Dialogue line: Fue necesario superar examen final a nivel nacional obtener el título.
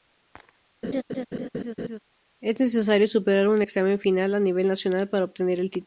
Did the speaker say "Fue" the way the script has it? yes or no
no